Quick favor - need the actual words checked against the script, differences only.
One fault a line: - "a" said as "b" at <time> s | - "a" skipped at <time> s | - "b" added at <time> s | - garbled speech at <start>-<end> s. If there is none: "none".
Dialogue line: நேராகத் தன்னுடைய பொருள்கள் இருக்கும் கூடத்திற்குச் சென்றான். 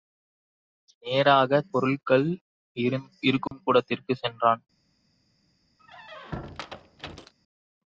- "தன்னுடைய" skipped at 1.7 s